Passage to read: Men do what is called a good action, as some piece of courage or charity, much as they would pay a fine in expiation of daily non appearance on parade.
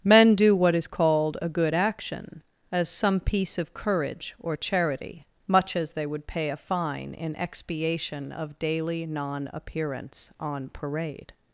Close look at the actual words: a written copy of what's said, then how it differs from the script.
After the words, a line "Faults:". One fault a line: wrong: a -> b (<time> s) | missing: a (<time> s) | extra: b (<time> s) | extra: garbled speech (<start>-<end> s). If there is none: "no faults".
Men do what is called a good action, as some piece of courage or charity, much as they would pay a fine in expiation of daily non appearance on parade.
Faults:
no faults